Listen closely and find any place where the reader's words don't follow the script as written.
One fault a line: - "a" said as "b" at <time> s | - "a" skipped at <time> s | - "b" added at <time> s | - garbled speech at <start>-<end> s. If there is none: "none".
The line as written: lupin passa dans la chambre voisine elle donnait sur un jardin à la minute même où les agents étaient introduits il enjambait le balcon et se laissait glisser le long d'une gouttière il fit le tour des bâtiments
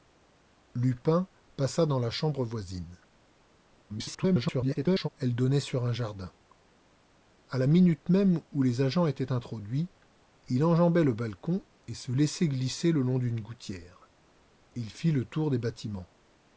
- garbled speech at 3.9-5.1 s